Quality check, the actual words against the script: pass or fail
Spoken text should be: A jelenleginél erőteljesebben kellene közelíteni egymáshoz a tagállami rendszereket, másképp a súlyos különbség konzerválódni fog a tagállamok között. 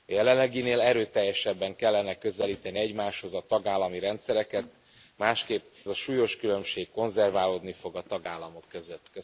pass